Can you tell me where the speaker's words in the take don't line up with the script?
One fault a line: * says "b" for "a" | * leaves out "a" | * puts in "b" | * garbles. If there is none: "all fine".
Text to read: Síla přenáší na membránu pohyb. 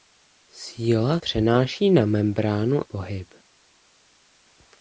all fine